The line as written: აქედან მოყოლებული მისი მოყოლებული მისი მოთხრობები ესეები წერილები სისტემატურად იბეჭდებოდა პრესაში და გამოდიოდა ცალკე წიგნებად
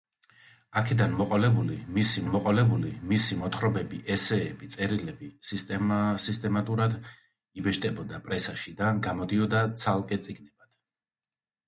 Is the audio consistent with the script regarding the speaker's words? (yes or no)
yes